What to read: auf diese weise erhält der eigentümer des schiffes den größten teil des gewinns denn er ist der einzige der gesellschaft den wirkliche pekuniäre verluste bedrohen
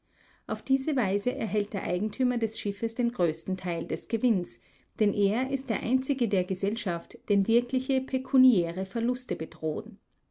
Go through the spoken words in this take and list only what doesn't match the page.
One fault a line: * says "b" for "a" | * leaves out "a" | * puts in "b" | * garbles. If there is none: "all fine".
all fine